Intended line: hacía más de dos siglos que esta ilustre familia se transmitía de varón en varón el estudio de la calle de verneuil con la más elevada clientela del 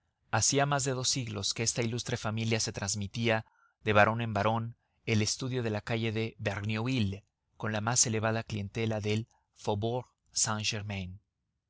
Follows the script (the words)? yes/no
yes